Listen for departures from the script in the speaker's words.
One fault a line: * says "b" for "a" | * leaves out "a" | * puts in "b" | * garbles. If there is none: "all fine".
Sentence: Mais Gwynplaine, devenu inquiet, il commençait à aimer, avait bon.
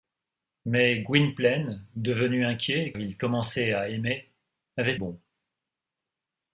all fine